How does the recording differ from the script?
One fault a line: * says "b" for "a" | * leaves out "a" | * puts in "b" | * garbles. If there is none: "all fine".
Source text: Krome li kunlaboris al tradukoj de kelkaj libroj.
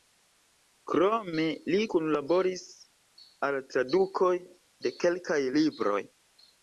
all fine